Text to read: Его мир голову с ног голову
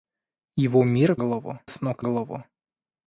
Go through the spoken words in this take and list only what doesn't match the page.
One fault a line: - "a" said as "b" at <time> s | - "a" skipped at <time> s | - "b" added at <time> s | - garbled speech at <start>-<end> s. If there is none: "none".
none